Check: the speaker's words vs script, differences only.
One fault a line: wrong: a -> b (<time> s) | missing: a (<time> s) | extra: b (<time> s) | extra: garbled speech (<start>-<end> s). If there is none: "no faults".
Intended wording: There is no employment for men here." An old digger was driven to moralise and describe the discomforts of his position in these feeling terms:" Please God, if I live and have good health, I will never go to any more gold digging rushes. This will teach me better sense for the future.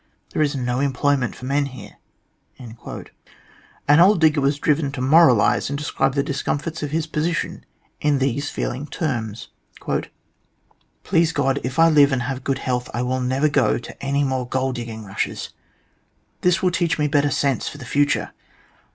no faults